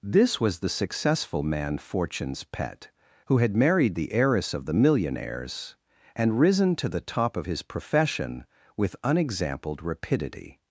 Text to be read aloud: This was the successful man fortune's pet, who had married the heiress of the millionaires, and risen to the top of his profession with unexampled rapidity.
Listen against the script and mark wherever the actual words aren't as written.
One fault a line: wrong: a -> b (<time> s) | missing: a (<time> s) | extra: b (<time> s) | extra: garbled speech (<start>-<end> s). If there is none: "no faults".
no faults